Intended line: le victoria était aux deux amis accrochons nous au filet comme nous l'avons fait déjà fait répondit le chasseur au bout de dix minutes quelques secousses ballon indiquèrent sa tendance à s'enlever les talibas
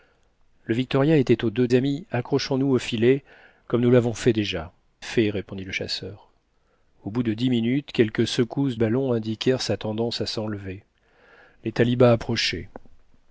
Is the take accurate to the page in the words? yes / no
yes